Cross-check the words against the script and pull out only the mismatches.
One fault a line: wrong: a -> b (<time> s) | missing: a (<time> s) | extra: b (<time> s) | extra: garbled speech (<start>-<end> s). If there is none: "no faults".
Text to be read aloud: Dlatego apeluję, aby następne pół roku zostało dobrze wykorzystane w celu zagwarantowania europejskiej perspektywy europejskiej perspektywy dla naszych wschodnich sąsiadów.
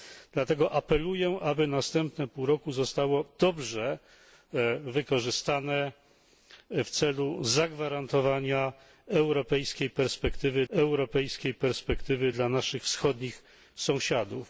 no faults